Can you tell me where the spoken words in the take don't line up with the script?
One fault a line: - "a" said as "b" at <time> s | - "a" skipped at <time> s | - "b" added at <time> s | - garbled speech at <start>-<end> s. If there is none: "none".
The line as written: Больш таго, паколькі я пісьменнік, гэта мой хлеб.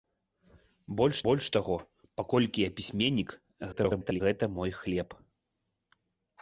- "больш" added at 1.3 s
- garbled speech at 3.7-4.2 s